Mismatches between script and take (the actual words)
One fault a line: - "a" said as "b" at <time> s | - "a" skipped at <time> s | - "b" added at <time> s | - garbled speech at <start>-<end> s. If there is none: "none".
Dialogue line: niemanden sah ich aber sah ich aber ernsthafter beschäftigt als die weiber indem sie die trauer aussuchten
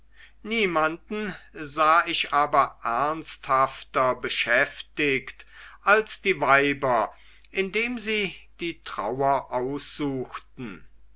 - "sah ich aber" skipped at 2.8 s